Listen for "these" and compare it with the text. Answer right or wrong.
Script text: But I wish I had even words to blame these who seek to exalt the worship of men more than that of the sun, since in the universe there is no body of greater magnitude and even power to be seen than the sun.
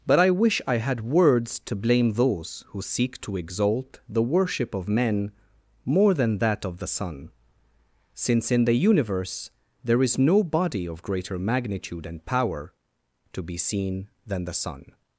wrong